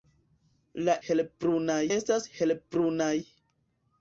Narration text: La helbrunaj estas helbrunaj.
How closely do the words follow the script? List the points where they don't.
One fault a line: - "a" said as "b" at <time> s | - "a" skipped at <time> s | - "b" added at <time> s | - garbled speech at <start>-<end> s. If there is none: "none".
none